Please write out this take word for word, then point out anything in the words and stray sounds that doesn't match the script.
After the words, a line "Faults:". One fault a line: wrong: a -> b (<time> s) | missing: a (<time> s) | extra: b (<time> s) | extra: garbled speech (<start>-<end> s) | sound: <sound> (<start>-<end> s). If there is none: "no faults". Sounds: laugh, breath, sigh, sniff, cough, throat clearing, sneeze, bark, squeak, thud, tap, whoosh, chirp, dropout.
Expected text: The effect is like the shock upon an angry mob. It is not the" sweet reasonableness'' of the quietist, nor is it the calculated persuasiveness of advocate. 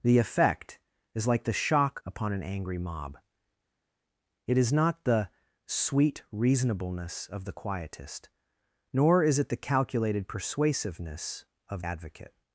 The effect is like the shock upon an angry mob. It is not the" sweet reasonableness'' of the quietist, nor is it the calculated persuasiveness of advocate.
Faults:
no faults